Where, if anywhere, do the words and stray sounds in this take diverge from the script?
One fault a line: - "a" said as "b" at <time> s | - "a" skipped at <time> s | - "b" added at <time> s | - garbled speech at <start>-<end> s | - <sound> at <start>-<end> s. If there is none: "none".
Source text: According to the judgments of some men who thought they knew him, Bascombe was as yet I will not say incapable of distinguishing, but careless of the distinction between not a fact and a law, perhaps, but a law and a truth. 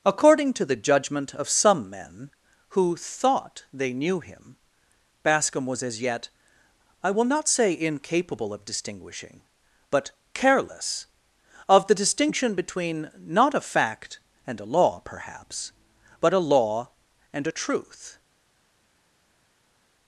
- "judgments" said as "judgment" at 0.8 s